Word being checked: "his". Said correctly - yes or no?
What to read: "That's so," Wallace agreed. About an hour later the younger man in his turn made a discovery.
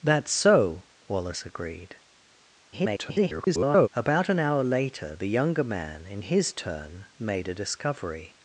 yes